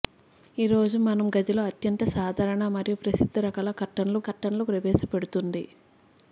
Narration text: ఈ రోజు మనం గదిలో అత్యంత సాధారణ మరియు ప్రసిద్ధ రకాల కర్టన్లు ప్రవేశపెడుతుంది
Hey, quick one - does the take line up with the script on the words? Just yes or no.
no